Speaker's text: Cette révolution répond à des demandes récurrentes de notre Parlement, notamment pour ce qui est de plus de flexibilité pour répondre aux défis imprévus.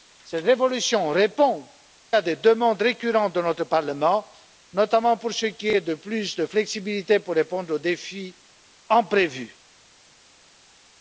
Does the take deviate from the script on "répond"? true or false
false